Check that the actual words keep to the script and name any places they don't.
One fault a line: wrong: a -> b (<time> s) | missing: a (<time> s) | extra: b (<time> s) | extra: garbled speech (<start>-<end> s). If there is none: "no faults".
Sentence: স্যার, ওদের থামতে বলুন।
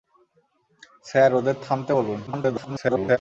extra: garbled speech (2.3-3.2 s)